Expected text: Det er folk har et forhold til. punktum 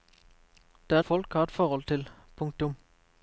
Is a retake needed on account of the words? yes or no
no